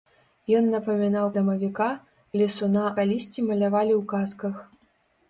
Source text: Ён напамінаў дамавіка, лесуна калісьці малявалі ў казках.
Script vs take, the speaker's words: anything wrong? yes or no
no